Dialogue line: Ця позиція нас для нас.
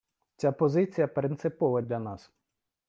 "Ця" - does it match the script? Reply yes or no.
yes